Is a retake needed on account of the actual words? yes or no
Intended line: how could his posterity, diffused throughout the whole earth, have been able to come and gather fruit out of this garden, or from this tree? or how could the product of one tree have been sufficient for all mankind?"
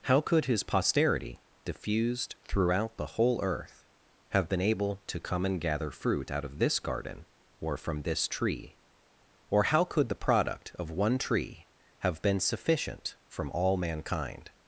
yes